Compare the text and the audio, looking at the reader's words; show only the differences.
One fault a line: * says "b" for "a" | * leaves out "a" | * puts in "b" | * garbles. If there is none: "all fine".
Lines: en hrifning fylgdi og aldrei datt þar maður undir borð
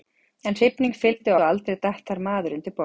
all fine